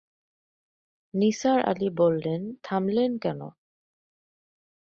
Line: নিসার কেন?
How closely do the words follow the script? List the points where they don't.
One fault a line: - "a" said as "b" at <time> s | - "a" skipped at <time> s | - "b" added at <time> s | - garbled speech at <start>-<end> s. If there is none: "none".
- "আলি বললেন থামলেন" added at 1.6 s